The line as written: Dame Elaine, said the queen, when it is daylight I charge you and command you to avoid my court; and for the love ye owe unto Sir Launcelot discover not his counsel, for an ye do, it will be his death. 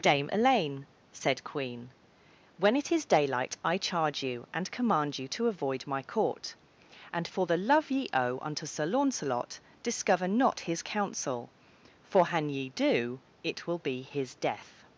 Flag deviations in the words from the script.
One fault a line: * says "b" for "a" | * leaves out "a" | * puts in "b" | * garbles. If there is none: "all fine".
* leaves out "the"